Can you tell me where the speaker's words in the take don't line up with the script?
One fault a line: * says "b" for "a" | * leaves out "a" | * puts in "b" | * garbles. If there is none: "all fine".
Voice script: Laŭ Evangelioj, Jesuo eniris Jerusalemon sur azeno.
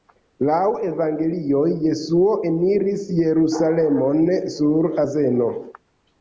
all fine